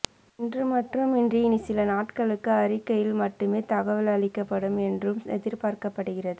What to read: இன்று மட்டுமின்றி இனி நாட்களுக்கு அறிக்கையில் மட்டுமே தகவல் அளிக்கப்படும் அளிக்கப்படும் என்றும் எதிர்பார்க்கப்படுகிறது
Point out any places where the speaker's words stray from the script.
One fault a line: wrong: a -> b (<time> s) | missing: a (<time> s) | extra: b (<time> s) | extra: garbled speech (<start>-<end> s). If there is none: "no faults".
extra: சில (1.6 s)
missing: அளிக்கப்படும் (4.8 s)